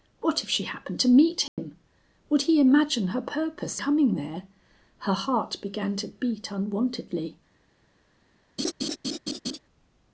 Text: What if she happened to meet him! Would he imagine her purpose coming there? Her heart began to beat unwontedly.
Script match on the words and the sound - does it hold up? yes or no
no